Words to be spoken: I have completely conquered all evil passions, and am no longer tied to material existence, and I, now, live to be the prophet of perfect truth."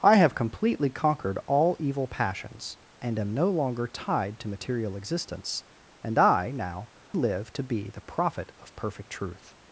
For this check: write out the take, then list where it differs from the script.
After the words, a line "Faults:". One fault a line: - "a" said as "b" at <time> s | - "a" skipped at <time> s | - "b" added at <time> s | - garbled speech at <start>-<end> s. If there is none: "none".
I have completely conquered all evil passions, and am no longer tied to material existence, and I, now, live to be the prophet of perfect truth."
Faults:
none